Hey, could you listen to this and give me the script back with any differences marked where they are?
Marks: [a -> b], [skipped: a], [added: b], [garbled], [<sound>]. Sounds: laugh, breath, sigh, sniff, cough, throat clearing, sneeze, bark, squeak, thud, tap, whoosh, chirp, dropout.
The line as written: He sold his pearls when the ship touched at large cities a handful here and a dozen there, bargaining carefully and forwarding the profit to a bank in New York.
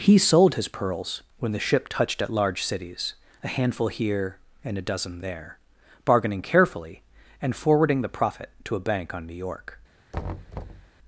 He sold his pearls when the ship touched at large cities a handful here and a dozen there, bargaining carefully and forwarding the profit to a bank [in -> on] New York. [thud]